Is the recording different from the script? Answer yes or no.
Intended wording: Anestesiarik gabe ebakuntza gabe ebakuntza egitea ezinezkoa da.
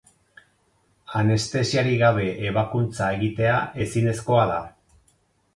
yes